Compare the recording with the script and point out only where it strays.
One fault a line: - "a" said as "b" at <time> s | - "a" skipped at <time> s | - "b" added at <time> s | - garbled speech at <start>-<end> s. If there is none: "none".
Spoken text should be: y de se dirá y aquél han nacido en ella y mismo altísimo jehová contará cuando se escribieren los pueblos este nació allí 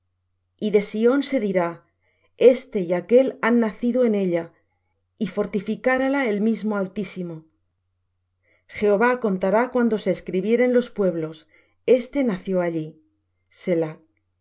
- "sión" added at 0.8 s
- "este" added at 2.5 s
- "fortificarála el" added at 5.3 s